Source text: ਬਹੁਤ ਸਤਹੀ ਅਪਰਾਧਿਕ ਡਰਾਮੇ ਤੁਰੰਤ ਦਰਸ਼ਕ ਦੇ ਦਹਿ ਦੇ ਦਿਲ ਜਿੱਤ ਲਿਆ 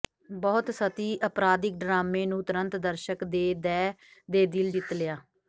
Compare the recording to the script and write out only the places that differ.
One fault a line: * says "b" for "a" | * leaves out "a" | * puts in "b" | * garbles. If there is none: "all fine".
* puts in "ਨੂੰ"